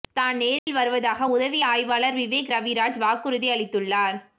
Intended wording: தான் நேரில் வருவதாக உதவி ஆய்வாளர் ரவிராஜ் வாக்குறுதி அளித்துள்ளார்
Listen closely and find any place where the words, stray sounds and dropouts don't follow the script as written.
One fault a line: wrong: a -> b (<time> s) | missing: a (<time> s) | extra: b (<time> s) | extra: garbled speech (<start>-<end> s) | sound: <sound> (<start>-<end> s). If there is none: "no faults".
sound: dropout (0.6-0.7 s)
extra: விவேக் (2.2 s)